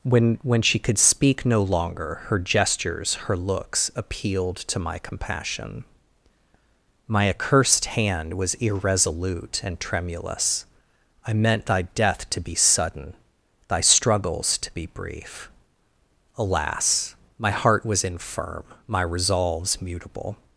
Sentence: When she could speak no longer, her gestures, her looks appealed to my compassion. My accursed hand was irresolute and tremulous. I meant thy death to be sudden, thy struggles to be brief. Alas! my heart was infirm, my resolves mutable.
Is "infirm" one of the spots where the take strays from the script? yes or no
no